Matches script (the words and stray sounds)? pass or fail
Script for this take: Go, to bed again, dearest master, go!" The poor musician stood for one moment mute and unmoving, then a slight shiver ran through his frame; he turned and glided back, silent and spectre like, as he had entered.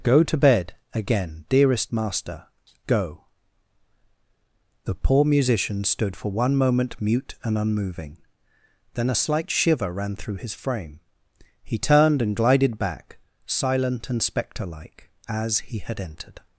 pass